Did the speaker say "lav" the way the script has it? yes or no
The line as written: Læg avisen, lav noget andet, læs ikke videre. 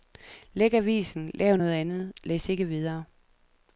yes